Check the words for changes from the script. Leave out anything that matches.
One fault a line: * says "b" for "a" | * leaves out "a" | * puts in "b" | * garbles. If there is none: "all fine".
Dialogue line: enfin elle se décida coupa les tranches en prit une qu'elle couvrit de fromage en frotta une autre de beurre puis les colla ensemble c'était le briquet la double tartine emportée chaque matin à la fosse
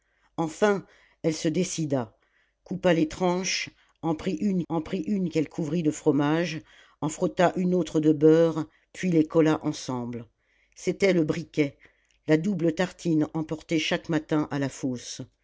* puts in "en prit une"